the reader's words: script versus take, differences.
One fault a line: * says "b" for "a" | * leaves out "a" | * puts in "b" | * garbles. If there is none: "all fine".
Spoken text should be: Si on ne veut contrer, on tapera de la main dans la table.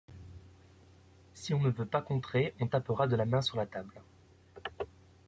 * puts in "pas"
* says "sur" for "dans"